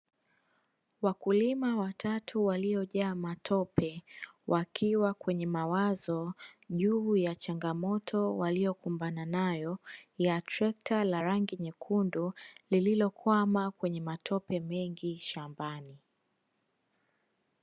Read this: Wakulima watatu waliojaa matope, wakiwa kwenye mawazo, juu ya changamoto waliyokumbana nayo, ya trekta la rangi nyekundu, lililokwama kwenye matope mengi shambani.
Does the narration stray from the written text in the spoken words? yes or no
no